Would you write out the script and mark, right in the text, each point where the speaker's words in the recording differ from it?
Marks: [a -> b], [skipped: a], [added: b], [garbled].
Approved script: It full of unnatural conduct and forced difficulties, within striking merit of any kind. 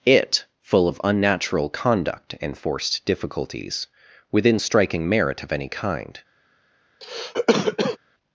It full of unnatural conduct and forced difficulties, within striking merit of any kind.